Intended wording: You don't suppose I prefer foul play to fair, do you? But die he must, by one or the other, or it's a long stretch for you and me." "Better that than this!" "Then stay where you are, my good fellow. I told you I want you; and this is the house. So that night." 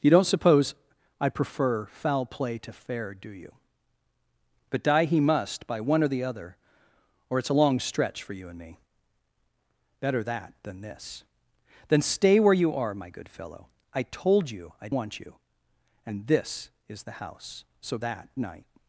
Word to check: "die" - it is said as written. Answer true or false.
true